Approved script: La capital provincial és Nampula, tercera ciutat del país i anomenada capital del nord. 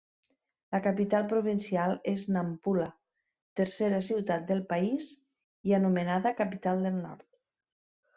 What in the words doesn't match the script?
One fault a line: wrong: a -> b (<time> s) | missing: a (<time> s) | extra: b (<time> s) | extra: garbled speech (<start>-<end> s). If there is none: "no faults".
no faults